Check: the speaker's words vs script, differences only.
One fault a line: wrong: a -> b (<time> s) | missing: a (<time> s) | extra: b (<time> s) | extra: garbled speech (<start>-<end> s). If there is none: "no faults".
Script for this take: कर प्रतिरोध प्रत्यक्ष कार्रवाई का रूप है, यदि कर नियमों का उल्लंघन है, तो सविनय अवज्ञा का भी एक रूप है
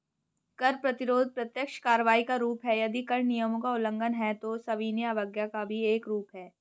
no faults